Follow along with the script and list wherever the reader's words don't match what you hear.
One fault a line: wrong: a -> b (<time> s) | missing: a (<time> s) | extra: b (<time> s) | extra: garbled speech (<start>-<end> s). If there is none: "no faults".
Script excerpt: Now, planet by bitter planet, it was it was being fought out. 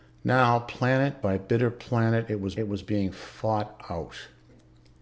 no faults